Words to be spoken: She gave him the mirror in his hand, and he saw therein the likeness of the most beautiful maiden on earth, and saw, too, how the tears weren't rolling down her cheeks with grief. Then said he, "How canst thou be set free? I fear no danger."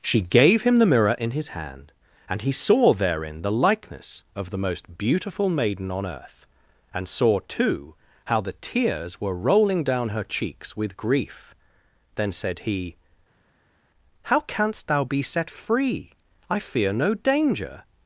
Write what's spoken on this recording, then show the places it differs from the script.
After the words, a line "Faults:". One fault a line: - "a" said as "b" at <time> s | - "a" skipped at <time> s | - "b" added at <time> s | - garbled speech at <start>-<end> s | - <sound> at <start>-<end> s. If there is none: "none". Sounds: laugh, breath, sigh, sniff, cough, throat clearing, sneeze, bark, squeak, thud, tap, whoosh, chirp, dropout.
She gave him the mirror in his hand, and he saw therein the likeness of the most beautiful maiden on earth, and saw, too, how the tears were rolling down her cheeks with grief. Then said he, "How canst thou be set free? I fear no danger."
Faults:
- "weren't" said as "were" at 9.2 s